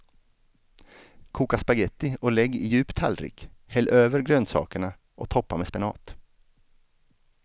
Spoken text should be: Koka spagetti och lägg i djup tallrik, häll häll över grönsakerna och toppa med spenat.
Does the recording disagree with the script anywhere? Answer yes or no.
yes